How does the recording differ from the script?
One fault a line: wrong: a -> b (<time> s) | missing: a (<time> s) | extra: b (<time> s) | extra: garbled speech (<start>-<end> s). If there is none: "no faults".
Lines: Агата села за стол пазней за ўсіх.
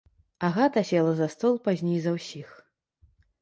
no faults